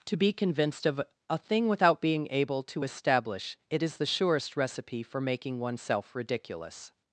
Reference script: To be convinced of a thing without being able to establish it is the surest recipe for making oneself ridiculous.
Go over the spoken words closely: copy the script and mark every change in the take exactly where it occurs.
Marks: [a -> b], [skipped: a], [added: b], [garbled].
To be convinced of a thing without being able to establish it is the surest recipe for making oneself ridiculous.